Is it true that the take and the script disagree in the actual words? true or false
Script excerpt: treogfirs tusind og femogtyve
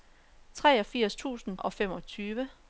false